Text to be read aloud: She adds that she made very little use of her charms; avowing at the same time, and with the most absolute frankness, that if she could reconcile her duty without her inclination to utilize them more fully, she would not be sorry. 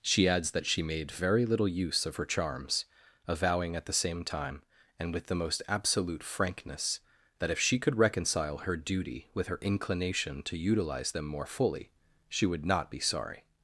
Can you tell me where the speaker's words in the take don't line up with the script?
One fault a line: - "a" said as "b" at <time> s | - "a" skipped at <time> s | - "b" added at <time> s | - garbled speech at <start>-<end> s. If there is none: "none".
- "without" said as "with" at 9.3 s